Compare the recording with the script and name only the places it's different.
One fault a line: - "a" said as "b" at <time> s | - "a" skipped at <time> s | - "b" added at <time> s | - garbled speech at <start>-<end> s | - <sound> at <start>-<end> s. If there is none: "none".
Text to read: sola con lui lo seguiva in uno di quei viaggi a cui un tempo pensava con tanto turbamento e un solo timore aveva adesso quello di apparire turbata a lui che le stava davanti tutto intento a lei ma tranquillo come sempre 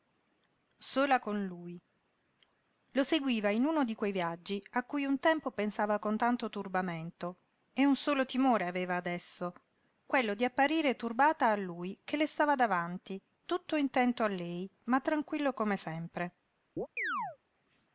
- chirp at 16.8-17.4 s